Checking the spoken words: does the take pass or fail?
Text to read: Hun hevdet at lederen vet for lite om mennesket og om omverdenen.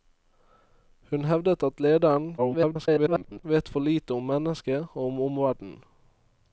fail